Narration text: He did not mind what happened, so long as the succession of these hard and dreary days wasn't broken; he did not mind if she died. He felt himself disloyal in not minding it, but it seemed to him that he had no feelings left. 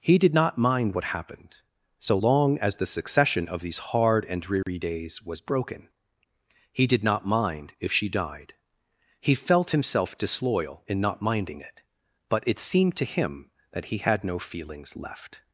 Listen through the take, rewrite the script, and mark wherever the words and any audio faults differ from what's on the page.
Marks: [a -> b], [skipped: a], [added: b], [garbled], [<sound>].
He did not mind what happened, so long as the succession of these hard and dreary [dropout] days [wasn't -> was] broken; he did not mind if she died. He felt himself disloyal in not minding it, but it seemed to him that he had no feelings left.